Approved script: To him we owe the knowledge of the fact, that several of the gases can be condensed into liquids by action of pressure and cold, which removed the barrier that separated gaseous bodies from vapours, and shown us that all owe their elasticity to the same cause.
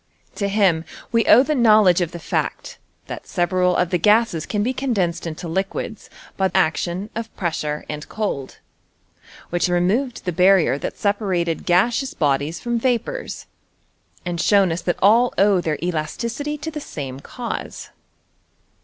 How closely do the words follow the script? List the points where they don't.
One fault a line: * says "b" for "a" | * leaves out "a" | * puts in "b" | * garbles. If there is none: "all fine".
all fine